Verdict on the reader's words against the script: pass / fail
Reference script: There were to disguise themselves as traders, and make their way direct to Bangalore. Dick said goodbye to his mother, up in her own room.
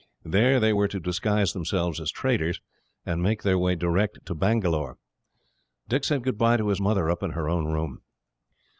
fail